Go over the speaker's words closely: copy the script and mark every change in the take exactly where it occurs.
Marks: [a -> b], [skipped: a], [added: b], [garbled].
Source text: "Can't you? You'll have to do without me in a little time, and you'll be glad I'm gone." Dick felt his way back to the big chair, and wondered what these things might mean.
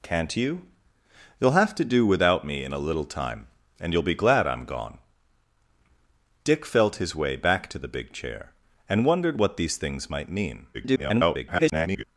"Can't you? You'll have to do without me in a little time, and you'll be glad I'm gone." Dick felt his way back to the big chair, and wondered what these things might mean. [garbled]